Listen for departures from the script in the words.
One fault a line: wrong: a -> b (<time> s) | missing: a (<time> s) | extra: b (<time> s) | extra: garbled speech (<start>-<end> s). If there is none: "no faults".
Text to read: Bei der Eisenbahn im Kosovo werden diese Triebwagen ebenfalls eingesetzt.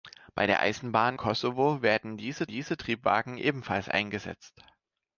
missing: im (1.2 s)
extra: diese (2.5 s)